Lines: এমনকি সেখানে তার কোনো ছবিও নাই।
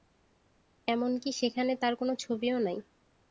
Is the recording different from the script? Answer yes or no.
no